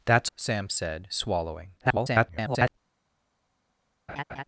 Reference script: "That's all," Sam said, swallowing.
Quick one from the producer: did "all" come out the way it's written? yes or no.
no